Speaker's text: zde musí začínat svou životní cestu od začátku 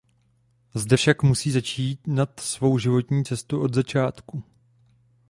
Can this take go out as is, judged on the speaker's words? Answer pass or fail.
fail